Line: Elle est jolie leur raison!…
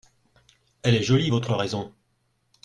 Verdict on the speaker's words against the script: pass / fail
fail